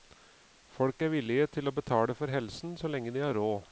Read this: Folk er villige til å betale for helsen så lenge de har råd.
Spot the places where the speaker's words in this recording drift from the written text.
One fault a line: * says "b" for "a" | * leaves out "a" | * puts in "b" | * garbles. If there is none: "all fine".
all fine